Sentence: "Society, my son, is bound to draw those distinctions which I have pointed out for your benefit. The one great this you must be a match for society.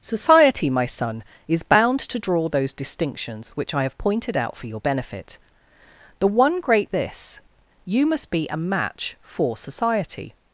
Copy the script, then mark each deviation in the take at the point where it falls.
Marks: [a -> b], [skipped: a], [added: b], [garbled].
"Society, my son, is bound to draw those distinctions which I have pointed out for your benefit. The one great this you must be a match for society.